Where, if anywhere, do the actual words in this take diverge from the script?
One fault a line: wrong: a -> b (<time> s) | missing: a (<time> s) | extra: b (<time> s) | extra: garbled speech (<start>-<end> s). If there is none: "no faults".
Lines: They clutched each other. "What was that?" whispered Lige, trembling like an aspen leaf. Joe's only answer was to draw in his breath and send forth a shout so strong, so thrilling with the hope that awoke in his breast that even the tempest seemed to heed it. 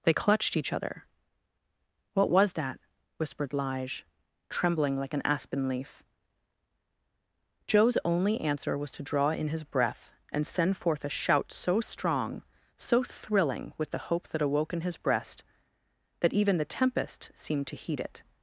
no faults